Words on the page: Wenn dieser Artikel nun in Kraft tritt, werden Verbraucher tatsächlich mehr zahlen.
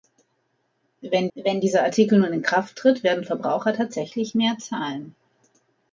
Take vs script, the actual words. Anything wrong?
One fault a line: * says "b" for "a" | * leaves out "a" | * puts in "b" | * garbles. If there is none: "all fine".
* puts in "wenn"